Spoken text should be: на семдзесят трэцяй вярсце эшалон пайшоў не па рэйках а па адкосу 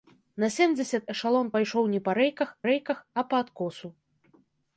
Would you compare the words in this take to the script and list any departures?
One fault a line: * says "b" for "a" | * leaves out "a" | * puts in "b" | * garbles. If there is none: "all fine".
* leaves out "трэцяй вярсце"
* puts in "рэйках"